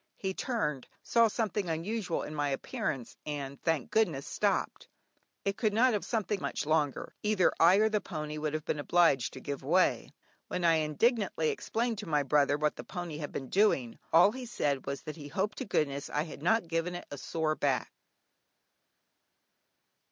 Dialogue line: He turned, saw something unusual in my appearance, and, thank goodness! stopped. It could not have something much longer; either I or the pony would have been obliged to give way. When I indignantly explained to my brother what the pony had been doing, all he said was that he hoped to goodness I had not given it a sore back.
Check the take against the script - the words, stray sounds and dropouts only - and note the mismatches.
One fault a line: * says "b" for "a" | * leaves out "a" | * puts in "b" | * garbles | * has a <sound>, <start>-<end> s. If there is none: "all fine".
all fine